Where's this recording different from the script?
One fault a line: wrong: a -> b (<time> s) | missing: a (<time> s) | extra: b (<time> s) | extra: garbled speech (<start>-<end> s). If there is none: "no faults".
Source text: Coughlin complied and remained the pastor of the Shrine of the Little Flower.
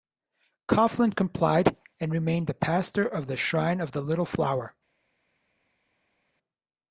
no faults